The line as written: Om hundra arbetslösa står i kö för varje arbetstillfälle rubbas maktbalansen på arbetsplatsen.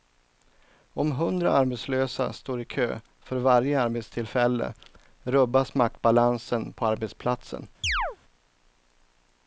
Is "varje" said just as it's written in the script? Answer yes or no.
yes